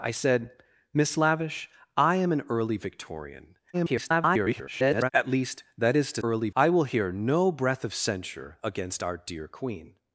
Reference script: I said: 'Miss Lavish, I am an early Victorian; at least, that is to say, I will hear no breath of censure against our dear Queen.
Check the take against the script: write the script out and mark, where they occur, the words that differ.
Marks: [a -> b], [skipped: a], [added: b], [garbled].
I said: 'Miss Lavish, I am an early Victorian; [garbled] at least, that is to [say, -> early] I will hear no breath of censure against our dear Queen.